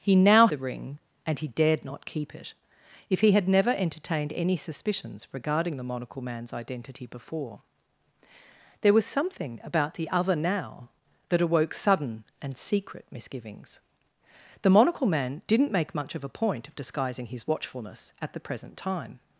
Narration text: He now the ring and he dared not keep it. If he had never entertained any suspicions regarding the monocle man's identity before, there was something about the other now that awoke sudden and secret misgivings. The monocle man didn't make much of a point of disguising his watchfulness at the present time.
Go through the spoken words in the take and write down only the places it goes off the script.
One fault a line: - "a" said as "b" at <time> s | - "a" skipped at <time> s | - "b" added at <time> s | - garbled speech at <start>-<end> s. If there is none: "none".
none